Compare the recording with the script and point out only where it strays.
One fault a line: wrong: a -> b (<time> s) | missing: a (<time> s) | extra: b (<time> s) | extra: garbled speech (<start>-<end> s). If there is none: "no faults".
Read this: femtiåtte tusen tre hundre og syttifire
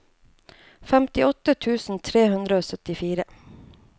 no faults